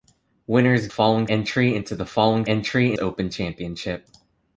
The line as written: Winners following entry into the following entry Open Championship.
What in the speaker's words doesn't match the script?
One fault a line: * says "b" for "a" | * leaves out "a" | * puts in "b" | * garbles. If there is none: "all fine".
all fine